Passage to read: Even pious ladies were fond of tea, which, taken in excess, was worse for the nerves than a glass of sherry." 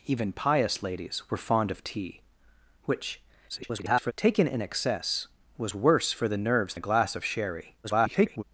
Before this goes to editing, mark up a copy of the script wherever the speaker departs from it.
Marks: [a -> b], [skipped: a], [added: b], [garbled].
Even pious ladies were fond of tea, which, [garbled] taken in excess, was worse for the nerves [skipped: than] a glass of sherry." [garbled]